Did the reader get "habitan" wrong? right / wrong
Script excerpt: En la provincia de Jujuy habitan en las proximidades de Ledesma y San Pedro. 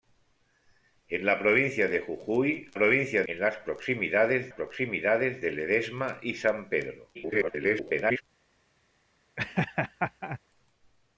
wrong